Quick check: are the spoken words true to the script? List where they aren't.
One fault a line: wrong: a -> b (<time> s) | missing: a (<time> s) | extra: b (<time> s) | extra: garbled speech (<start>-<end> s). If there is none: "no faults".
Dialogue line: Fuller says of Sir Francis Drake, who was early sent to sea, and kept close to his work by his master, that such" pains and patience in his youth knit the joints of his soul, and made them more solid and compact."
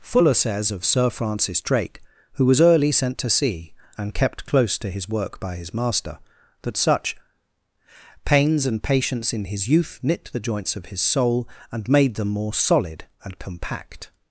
no faults